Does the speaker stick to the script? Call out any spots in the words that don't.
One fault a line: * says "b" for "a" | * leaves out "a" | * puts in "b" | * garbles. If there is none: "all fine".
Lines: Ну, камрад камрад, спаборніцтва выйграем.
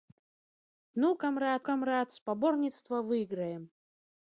all fine